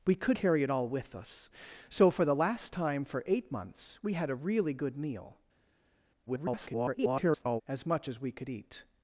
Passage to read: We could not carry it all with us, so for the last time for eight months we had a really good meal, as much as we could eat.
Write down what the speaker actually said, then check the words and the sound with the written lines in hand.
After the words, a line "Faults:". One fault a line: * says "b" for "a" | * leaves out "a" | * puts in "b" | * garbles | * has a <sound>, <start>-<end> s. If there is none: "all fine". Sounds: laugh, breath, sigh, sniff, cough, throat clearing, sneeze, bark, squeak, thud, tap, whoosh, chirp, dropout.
We could carry it all with us, so for the last time for eight months we had a really good meal, [garbled] as much as we could eat.
Faults:
* leaves out "not"
* garbles